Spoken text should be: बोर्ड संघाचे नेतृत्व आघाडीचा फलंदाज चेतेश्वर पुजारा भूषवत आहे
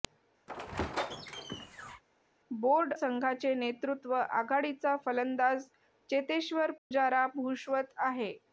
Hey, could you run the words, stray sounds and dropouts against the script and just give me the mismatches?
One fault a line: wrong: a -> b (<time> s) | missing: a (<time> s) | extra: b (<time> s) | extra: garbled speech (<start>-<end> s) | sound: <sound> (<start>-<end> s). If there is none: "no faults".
sound: squeak (0.5-2.0 s)
sound: dropout (6.8-6.9 s)